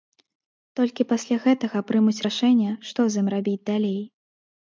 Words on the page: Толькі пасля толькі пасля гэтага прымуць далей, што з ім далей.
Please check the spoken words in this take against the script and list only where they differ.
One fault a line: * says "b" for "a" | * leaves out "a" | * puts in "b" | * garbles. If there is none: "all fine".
* leaves out "толькі пасля"
* says "рашэнне" for "далей"
* puts in "рабіць"